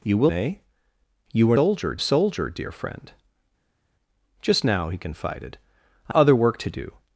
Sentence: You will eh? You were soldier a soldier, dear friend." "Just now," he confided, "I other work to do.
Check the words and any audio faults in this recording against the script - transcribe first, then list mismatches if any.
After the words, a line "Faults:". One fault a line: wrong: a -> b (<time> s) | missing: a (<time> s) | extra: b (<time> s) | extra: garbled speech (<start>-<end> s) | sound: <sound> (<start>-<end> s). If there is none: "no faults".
You will eh? You were soldier a soldier, dear friend." "Just now," he confided, "I other work to do.
Faults:
no faults